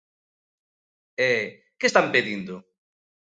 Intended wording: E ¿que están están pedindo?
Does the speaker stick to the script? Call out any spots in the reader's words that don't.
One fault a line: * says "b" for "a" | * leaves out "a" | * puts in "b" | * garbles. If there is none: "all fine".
* leaves out "están"